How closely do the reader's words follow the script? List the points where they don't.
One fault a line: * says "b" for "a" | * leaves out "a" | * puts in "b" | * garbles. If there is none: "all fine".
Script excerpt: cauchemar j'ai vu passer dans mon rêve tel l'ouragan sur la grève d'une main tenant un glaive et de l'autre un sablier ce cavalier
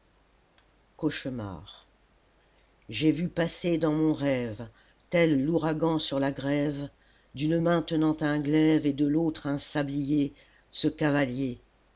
all fine